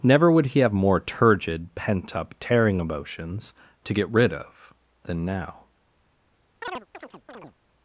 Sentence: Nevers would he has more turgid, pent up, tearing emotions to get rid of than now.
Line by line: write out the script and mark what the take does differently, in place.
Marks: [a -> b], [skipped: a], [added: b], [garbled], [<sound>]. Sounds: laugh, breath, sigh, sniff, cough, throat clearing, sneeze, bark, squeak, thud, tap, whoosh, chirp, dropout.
[Nevers -> Never] would he [has -> have] more turgid, pent up, tearing emotions to get rid of than now. [chirp]